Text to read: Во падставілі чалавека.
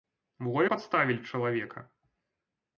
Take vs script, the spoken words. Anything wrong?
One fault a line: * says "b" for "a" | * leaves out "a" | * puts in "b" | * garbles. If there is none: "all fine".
all fine